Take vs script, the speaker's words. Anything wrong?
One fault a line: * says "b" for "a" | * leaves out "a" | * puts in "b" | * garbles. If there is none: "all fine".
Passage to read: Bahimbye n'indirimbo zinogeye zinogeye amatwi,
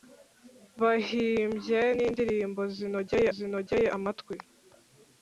all fine